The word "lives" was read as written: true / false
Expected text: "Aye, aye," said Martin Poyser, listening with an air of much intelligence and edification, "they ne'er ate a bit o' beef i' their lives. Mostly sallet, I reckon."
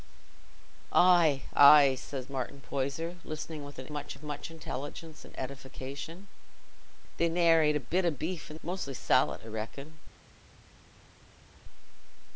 false